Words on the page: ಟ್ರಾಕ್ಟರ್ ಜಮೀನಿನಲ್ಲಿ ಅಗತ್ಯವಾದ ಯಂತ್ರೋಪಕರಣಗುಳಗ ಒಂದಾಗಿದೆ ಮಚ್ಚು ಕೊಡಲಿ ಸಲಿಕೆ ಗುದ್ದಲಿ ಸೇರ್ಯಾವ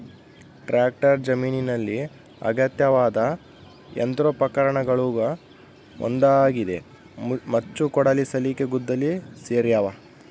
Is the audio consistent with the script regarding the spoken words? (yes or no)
yes